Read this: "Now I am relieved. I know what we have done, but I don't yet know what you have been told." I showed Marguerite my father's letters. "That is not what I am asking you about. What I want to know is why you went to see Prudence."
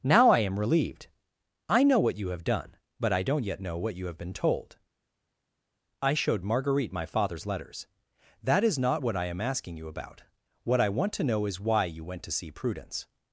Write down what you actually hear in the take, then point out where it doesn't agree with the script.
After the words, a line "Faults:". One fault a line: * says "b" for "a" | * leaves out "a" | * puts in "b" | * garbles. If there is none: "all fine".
"Now I am relieved. I know what you have done, but I don't yet know what you have been told." I showed Marguerite my father's letters. "That is not what I am asking you about. What I want to know is why you went to see Prudence."
Faults:
* says "you" for "we"